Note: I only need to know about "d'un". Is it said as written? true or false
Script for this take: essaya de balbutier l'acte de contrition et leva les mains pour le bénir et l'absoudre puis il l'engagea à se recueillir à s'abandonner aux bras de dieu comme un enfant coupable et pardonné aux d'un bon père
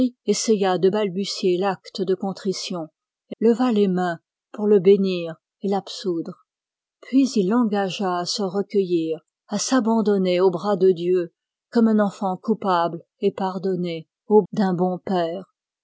true